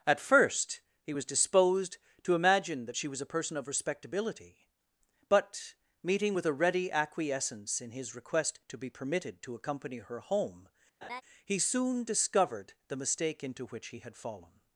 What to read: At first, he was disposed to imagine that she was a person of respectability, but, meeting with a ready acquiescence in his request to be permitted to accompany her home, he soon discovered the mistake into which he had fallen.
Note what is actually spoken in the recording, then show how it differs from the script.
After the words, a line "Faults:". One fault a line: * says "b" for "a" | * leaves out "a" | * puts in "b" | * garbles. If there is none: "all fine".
At first, he was disposed to imagine that she was a person of respectability, but, meeting with a ready acquiescence in his request to be permitted to accompany her home, he soon discovered the mistake into which he had fallen.
Faults:
all fine